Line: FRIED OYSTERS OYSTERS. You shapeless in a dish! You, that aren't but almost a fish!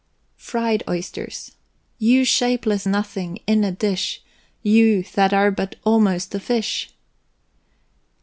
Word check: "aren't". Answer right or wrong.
wrong